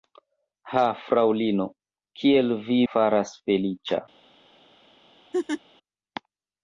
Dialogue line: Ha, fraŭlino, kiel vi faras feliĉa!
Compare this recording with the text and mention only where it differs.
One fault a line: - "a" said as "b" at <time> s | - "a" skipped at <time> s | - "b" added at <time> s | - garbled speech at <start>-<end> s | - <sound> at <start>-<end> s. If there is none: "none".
- laugh at 5.3-5.6 s